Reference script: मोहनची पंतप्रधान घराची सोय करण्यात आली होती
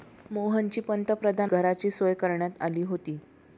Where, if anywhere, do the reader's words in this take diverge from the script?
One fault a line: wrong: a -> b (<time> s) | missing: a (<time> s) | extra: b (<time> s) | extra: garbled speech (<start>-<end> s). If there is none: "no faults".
no faults